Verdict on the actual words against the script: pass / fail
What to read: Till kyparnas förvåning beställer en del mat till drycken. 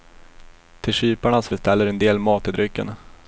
fail